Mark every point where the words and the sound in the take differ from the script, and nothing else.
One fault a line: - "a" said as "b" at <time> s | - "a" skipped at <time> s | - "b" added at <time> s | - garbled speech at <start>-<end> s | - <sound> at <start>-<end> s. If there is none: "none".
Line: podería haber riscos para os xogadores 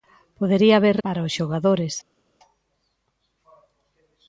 - "riscos" skipped at 1.0 s